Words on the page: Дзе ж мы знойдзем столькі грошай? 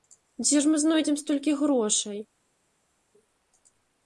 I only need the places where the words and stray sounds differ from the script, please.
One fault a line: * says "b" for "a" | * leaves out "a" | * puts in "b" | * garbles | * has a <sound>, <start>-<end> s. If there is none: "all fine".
all fine